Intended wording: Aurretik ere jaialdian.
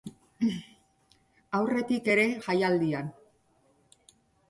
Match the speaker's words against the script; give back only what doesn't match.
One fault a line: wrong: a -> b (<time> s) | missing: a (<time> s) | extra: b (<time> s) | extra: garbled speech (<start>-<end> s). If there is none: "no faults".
no faults